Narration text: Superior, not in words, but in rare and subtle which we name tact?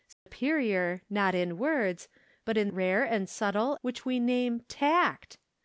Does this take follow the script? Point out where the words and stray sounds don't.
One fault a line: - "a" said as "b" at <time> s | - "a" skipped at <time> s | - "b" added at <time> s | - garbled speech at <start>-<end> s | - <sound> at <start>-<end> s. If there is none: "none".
- dropout at 0.1-0.3 s